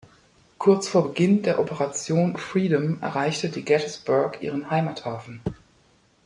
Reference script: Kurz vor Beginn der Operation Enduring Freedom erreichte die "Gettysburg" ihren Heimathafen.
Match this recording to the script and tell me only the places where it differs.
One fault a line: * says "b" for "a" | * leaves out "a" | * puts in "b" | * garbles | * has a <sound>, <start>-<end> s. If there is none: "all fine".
* leaves out "Enduring"